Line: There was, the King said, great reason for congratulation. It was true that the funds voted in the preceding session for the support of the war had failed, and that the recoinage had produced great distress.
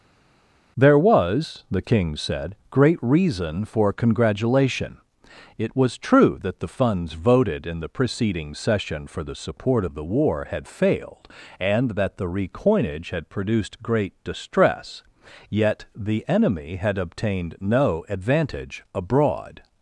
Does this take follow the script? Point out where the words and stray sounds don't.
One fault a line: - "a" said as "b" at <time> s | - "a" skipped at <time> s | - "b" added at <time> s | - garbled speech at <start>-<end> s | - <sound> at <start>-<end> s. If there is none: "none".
- "Yet the enemy had obtained no advantage abroad" added at 15.5 s